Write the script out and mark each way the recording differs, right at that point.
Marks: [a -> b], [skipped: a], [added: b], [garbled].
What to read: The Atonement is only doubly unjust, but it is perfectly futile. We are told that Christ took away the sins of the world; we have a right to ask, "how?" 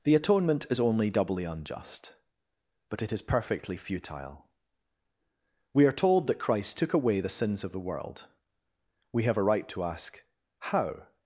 The Atonement is only doubly unjust, but it is perfectly futile. We are told that Christ took away the sins of the world; we have a right to ask, "how?"